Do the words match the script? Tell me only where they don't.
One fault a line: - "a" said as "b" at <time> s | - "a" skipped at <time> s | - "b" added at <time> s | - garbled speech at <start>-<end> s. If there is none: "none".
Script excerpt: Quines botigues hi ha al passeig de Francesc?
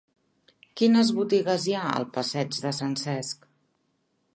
none